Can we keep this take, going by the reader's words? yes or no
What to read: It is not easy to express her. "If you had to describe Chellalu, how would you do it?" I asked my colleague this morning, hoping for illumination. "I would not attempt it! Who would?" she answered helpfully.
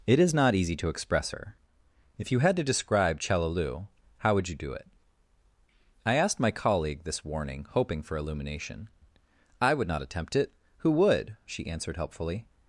no